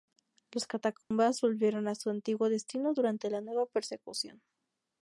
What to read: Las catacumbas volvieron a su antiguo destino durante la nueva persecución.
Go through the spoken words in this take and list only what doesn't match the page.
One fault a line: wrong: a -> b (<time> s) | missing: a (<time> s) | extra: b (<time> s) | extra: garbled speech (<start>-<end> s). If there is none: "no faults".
no faults